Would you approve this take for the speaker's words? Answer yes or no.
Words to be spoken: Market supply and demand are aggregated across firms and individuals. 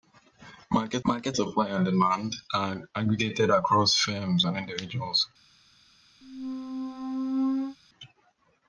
no